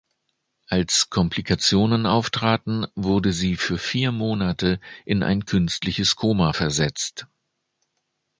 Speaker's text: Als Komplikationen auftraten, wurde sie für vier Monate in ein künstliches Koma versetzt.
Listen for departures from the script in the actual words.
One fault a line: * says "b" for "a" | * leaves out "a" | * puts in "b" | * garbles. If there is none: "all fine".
all fine